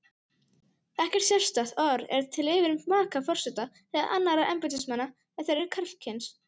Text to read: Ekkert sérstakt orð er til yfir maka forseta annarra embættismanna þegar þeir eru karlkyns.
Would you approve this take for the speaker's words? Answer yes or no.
no